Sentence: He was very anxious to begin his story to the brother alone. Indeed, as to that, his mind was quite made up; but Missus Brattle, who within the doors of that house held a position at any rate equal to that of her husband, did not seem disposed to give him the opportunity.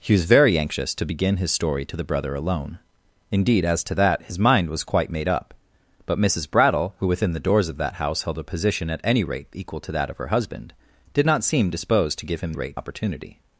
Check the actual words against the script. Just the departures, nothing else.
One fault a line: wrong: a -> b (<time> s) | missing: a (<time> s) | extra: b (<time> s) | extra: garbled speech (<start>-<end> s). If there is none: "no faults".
wrong: the -> rate (12.5 s)